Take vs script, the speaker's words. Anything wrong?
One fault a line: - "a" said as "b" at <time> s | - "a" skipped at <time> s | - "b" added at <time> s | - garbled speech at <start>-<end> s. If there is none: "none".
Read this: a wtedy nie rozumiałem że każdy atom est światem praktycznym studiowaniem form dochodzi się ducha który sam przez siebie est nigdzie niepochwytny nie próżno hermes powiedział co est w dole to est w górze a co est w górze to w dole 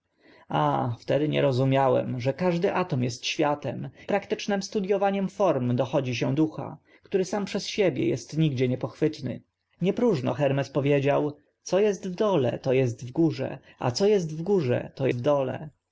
none